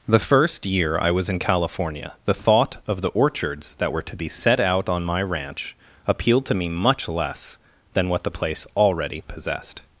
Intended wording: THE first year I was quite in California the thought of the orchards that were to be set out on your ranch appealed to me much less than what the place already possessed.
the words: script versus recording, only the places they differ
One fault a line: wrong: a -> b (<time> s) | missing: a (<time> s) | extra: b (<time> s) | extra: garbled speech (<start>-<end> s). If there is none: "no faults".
missing: quite (1.3 s)
wrong: your -> my (5.0 s)